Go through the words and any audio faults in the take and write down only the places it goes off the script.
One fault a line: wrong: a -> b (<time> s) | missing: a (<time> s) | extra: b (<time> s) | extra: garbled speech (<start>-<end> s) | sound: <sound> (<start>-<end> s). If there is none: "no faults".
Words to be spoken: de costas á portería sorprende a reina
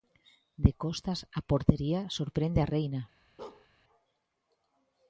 sound: bark (3.4-3.7 s)